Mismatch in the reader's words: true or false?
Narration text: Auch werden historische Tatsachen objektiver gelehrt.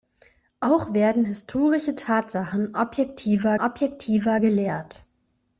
true